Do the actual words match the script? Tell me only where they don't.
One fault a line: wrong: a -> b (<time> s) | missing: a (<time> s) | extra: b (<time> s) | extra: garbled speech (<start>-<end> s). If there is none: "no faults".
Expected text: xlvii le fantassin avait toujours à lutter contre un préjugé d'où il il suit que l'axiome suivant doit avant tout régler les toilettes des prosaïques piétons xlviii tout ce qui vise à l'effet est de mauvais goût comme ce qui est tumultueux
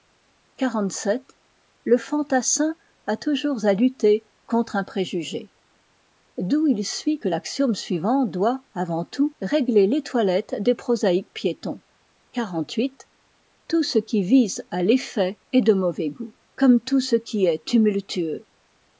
wrong: avait -> a (3.0 s)
missing: il (6.8 s)
extra: tout (16.8 s)